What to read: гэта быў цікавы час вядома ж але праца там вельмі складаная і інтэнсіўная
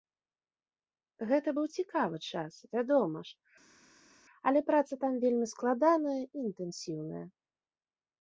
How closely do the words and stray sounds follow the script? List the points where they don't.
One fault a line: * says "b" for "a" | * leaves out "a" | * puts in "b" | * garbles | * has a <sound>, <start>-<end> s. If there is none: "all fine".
all fine